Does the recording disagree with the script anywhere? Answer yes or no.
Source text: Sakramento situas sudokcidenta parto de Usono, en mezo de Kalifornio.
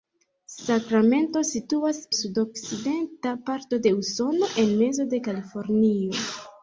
no